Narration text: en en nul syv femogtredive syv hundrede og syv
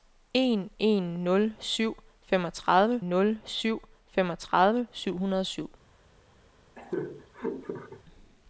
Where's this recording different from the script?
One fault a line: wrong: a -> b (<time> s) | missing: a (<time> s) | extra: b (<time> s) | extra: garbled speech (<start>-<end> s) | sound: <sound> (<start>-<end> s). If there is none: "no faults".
extra: nul syv femogtredive (3.1 s)
sound: laugh (6.8-8.0 s)